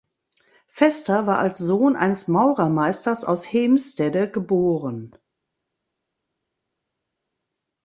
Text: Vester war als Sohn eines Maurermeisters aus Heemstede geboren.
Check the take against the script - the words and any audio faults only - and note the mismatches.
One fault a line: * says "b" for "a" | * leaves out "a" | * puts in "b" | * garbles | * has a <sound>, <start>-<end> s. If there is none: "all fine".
all fine